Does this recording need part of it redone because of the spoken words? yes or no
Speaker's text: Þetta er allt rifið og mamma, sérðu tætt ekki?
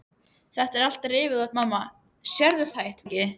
no